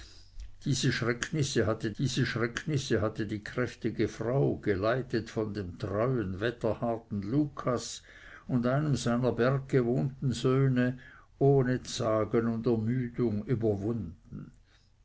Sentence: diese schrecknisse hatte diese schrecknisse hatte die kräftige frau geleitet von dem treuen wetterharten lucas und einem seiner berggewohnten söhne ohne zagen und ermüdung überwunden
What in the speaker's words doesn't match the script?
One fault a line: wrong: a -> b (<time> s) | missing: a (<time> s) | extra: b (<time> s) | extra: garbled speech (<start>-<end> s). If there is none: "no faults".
no faults